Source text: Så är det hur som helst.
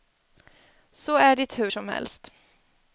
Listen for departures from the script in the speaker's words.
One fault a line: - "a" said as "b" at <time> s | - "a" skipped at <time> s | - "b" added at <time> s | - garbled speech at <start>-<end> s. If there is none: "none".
none